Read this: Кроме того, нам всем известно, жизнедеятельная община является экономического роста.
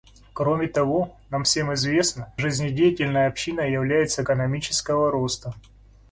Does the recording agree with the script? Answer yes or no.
yes